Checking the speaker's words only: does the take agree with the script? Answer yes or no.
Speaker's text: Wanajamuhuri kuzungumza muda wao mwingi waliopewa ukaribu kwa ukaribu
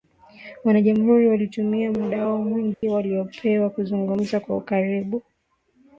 no